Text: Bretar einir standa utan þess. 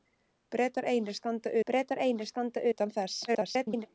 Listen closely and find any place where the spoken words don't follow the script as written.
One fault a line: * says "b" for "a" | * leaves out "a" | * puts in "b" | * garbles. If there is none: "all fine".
* puts in "bretar einir standa"
* garbles